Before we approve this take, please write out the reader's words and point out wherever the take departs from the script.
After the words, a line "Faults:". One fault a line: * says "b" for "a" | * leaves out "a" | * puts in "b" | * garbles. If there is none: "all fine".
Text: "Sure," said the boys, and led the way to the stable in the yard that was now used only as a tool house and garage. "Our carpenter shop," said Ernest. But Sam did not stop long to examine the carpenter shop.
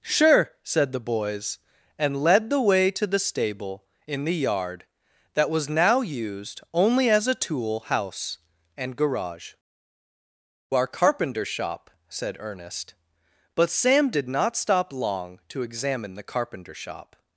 "Sure," said the boys, and led the way to the stable in the yard that was now used only as a tool house and garage. "Our carpenter shop," said Ernest. But Sam did not stop long to examine the carpenter shop.
Faults:
all fine